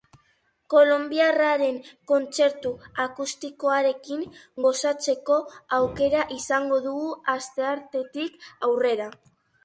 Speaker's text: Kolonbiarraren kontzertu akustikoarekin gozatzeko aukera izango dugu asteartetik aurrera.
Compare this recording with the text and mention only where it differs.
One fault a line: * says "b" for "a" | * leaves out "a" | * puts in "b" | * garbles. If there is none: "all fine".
all fine